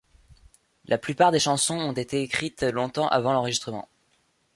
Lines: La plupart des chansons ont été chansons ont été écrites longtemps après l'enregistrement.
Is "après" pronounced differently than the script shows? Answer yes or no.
yes